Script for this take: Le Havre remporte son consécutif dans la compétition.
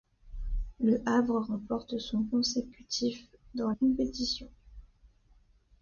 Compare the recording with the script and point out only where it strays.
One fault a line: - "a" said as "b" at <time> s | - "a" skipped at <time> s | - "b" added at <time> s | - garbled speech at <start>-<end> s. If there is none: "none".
- "la" skipped at 3.7 s